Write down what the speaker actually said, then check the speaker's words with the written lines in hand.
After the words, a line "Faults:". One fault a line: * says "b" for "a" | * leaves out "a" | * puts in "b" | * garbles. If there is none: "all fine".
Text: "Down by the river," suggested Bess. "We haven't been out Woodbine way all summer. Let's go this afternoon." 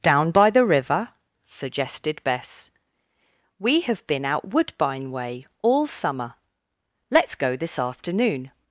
"Down by the river," suggested Bess. "We have been out Woodbine way all summer. Let's go this afternoon."
Faults:
* says "have" for "haven't"